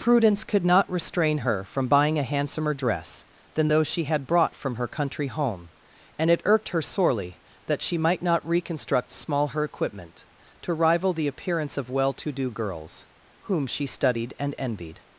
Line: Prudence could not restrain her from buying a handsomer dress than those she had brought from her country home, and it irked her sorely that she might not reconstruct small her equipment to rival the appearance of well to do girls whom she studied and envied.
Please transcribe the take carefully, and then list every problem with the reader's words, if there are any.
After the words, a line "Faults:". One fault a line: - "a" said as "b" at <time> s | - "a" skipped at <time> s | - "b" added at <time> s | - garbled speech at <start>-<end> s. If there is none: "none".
Prudence could not restrain her from buying a handsomer dress than those she had brought from her country home, and it irked her sorely that she might not reconstruct small her equipment to rival the appearance of well to do girls whom she studied and envied.
Faults:
none